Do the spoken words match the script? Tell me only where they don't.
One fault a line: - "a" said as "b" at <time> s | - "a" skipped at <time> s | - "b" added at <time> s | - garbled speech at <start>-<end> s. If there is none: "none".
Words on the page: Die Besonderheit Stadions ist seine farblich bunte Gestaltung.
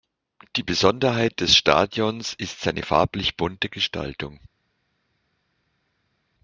- "des" added at 1.4 s